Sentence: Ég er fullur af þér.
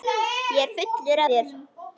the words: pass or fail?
fail